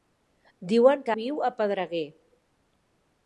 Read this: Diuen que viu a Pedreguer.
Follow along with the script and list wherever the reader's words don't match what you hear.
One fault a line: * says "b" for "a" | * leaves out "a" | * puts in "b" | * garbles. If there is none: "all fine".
all fine